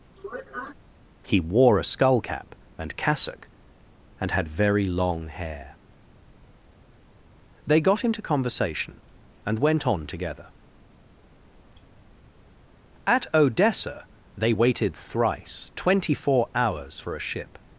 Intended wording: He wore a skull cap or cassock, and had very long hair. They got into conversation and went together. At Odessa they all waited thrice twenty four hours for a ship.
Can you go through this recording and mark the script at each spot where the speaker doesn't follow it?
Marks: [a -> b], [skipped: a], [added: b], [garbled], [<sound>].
[sniff] He wore a skull cap [or -> and] cassock, and had very long hair. They got into conversation and went [added: on] together. At Odessa they [skipped: all] waited thrice twenty four hours for a ship.